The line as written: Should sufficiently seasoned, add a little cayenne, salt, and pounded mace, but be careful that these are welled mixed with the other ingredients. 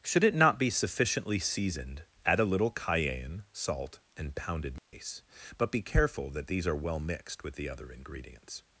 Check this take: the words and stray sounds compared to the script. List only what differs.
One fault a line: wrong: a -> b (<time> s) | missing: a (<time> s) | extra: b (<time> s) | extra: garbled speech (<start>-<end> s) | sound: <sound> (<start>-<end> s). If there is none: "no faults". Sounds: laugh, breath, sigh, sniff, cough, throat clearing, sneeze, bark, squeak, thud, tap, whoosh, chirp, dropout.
extra: it not be (0.2 s)
sound: dropout (4.8-4.9 s)
wrong: welled -> well (6.8 s)